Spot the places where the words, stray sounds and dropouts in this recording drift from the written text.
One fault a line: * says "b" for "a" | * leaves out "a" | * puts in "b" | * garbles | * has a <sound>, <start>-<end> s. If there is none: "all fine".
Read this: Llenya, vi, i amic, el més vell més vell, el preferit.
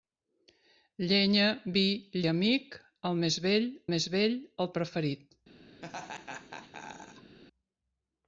* has a laugh, 5.8-7.4 s